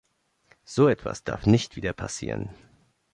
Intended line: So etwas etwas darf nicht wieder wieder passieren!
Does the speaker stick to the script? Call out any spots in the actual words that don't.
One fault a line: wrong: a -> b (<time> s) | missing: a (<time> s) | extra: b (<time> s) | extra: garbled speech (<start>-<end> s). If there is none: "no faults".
missing: etwas (1.2 s)
missing: wieder (1.9 s)